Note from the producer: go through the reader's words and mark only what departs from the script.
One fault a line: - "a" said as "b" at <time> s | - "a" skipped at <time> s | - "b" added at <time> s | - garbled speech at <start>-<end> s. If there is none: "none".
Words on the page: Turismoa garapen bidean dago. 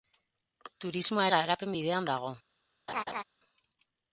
none